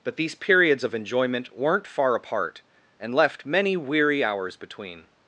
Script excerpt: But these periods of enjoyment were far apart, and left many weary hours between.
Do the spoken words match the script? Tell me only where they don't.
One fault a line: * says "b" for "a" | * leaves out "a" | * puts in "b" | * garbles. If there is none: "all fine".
* says "weren't" for "were"